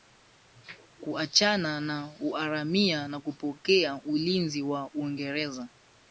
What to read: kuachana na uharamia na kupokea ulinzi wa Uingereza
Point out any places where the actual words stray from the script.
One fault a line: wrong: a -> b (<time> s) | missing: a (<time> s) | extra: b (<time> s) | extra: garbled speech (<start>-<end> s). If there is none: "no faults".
no faults